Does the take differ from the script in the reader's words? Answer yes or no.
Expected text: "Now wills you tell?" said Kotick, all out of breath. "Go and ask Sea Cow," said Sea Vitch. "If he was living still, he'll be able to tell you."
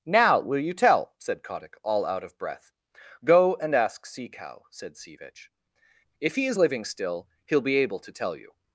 yes